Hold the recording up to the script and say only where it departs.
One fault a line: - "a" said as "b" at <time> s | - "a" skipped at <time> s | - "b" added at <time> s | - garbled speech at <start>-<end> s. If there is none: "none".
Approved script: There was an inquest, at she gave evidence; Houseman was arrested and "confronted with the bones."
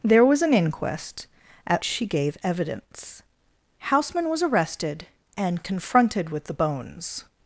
none